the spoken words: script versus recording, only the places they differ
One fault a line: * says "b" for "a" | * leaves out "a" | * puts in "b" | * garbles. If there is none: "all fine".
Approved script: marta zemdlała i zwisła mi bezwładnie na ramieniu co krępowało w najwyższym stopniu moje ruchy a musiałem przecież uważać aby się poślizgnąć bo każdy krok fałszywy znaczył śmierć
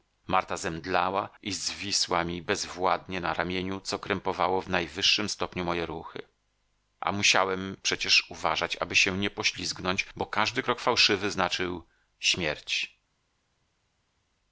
* puts in "nie"